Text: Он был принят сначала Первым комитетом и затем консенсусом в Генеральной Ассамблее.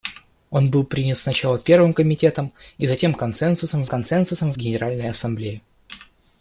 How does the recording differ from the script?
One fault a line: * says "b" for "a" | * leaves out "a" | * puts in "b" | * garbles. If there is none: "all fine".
* puts in "консенсусом"